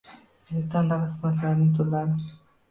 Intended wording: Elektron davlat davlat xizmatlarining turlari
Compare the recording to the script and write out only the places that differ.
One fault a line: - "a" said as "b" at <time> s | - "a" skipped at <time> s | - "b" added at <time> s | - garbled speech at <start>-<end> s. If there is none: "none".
- "davlat" skipped at 1.1 s